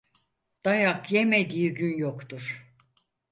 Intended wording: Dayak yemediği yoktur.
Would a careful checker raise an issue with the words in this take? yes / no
yes